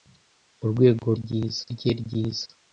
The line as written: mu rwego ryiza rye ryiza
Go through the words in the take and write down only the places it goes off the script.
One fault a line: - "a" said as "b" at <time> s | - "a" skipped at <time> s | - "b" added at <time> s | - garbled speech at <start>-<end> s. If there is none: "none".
none